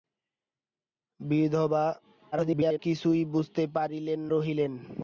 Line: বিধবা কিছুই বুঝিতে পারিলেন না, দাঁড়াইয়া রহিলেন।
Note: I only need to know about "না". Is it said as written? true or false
false